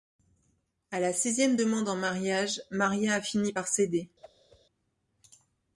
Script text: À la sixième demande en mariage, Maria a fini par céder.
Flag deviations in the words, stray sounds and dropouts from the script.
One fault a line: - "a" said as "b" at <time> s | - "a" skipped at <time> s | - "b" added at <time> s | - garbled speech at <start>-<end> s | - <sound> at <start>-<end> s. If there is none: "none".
- whoosh at 4.2-4.6 s